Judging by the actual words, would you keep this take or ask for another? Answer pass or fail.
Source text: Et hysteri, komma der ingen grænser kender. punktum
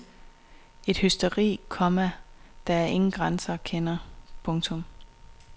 pass